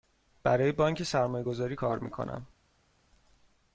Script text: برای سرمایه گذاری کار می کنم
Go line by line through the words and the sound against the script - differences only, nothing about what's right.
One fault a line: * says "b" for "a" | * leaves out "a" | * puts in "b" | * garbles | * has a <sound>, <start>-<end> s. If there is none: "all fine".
* puts in "بانک"